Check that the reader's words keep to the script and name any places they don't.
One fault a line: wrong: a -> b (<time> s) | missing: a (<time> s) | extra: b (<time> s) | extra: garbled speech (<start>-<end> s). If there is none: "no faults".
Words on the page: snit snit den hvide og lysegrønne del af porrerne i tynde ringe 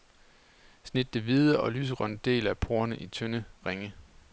missing: snit (1.1 s)